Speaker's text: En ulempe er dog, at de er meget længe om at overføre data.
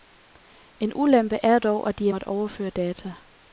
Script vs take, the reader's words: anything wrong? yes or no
yes